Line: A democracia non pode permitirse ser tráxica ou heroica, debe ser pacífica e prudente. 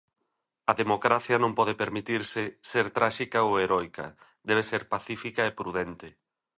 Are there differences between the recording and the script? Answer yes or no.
no